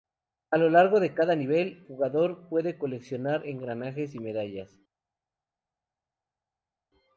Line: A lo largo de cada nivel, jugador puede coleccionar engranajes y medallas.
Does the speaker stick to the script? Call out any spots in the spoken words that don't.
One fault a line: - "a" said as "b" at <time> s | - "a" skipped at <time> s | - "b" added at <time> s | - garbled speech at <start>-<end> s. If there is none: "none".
none